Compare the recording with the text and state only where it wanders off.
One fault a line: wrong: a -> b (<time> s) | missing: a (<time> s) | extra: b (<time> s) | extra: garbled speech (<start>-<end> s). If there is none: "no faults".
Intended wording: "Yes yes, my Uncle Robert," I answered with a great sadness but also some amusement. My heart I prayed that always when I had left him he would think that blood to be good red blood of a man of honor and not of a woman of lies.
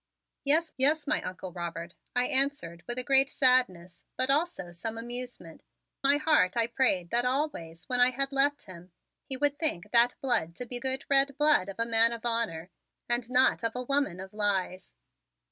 no faults